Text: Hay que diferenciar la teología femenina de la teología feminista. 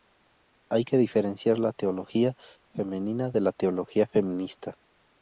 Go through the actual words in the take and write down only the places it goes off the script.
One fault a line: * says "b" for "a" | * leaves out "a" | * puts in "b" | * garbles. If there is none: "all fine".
all fine